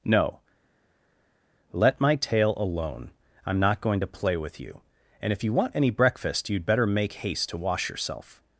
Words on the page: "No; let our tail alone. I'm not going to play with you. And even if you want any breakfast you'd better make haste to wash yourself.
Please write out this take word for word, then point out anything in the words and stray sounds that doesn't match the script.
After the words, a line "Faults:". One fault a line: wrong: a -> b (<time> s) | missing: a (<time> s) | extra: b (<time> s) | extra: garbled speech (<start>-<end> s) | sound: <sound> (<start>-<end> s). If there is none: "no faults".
"No; let my tail alone. I'm not going to play with you. And if you want any breakfast you'd better make haste to wash yourself.
Faults:
wrong: our -> my (2.0 s)
missing: even (5.3 s)